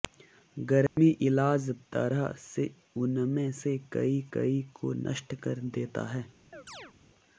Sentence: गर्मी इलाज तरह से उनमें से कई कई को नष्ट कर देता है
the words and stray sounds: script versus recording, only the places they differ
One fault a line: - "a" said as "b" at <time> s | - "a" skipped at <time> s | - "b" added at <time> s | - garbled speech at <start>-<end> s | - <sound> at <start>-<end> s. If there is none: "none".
- dropout at 0.9-1.0 s
- chirp at 6.5-6.9 s